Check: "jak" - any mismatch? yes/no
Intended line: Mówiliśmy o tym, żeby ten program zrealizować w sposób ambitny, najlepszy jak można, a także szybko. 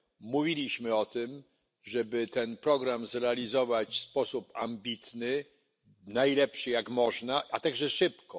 no